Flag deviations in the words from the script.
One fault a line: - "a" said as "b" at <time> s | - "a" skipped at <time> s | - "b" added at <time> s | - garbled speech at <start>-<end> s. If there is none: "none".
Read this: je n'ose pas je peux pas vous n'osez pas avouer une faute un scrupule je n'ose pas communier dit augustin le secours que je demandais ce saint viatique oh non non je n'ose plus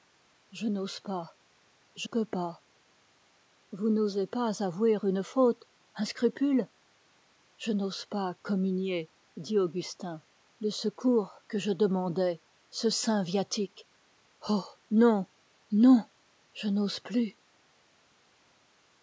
none